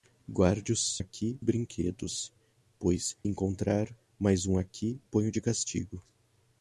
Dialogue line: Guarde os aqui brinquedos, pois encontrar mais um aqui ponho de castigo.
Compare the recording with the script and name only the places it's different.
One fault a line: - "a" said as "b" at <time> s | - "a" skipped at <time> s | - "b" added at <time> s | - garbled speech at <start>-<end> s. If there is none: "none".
none